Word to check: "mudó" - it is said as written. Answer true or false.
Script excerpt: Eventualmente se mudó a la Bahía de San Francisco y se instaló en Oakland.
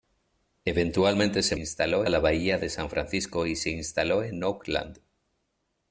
false